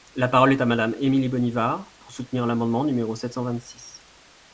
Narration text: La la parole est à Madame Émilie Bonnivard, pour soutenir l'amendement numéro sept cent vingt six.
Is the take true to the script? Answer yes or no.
no